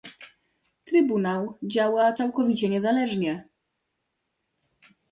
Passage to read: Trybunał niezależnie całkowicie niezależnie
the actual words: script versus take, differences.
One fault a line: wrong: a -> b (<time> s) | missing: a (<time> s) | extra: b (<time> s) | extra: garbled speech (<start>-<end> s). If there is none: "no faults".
wrong: niezależnie -> działa (1.6 s)